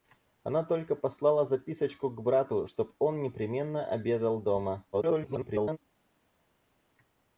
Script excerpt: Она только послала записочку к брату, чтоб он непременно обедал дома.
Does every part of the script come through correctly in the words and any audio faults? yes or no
no